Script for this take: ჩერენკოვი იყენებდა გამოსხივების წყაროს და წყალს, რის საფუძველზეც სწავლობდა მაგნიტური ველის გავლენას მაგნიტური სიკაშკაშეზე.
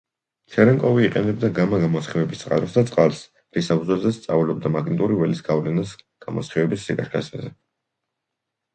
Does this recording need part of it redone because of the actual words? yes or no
yes